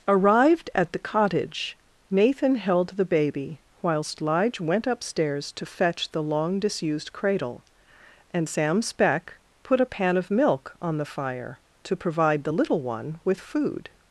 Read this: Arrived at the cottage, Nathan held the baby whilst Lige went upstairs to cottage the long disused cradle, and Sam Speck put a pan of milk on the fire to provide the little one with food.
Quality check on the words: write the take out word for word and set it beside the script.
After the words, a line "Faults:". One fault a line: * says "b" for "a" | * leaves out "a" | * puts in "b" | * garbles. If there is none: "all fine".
Arrived at the cottage, Nathan held the baby whilst Lige went upstairs to fetch the long disused cradle, and Sam Speck put a pan of milk on the fire to provide the little one with food.
Faults:
* says "fetch" for "cottage"